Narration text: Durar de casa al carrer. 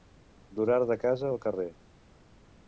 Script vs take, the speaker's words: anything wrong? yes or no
no